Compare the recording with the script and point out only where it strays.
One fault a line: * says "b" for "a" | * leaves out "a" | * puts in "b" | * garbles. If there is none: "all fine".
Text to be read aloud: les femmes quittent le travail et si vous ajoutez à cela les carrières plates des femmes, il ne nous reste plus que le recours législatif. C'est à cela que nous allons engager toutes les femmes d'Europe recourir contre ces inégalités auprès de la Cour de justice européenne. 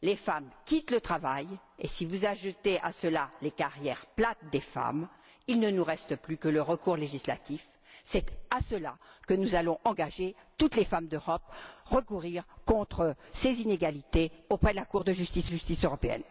* puts in "justice"